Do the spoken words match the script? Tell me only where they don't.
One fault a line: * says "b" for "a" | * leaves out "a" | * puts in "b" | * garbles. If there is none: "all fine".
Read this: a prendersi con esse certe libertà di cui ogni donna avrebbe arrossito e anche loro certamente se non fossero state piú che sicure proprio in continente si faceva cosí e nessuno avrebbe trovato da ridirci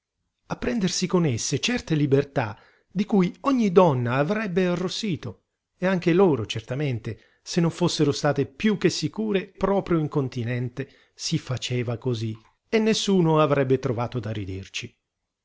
all fine